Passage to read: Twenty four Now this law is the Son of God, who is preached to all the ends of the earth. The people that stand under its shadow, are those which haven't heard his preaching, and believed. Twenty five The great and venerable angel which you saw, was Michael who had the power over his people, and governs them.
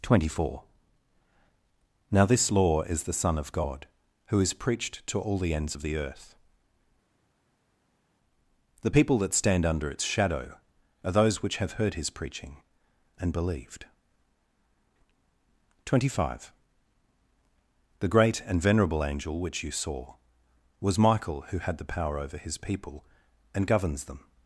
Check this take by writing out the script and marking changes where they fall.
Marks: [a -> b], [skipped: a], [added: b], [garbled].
Twenty four Now this law is the Son of God, who is preached to all the ends of the earth. The people that stand under its shadow, are those which [haven't -> have] heard his preaching, and believed. Twenty five The great and venerable angel which you saw, was Michael who had the power over his people, and governs them.